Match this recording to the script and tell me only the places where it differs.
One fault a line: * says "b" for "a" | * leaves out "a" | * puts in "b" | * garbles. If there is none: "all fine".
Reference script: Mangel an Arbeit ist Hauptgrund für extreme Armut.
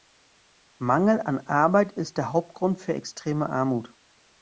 * puts in "der"